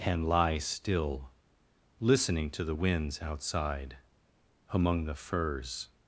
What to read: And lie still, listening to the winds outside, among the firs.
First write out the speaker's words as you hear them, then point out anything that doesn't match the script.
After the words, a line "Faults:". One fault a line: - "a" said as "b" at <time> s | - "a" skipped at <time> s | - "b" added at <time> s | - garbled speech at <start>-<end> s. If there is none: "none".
And lie still, listening to the winds outside, among the firs.
Faults:
none